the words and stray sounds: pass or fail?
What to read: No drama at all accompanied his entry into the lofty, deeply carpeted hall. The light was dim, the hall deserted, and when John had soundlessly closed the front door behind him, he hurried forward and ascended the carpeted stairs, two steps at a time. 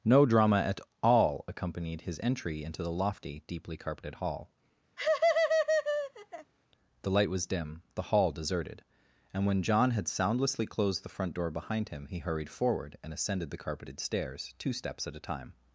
fail